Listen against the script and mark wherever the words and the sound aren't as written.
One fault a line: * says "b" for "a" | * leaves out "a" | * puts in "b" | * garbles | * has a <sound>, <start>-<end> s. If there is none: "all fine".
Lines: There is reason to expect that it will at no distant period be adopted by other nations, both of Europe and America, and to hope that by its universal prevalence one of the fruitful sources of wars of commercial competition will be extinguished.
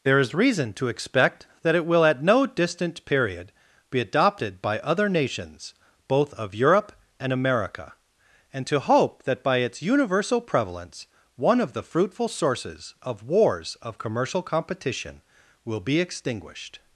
all fine